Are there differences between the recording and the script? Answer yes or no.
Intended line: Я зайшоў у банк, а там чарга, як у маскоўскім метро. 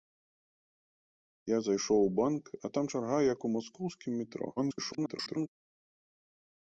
yes